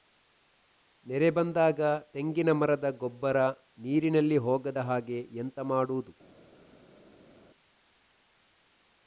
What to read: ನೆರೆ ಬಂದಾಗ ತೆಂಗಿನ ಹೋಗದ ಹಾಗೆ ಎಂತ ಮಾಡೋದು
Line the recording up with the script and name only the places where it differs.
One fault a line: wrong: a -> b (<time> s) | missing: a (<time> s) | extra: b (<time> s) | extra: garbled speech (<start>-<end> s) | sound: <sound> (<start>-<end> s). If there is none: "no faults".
extra: ಮರದ ಗೊಬ್ಬರ ನೀರಿನಲ್ಲಿ (2.5 s)